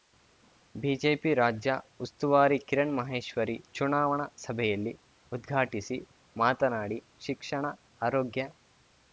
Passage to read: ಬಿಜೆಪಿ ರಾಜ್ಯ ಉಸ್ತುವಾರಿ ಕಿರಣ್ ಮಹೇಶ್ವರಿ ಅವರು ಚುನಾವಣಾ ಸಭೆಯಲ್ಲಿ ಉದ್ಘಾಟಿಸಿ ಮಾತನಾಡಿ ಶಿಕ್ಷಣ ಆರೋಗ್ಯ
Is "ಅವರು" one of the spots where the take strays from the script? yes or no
yes